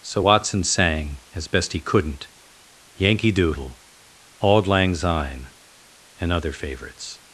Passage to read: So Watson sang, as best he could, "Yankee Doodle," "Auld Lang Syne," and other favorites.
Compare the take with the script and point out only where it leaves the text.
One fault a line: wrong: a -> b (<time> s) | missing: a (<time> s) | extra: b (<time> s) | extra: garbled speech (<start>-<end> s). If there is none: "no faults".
wrong: could -> couldn't (1.8 s)